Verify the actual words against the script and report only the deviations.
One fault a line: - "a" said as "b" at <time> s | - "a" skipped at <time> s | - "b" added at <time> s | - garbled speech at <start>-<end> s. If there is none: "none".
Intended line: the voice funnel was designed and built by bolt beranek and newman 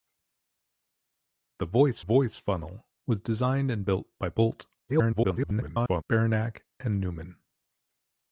- "voice" added at 2.0 s
- garbled speech at 4.9-6.0 s